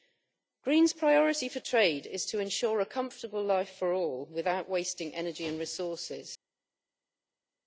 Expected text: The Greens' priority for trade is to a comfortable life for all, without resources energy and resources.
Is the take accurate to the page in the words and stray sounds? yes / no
no